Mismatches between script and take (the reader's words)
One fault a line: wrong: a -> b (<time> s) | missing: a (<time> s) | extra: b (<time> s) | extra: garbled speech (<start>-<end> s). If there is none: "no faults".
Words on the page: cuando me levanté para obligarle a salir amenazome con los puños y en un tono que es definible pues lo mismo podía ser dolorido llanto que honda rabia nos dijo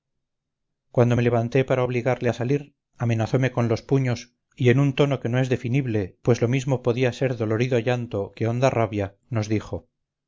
extra: no (5.3 s)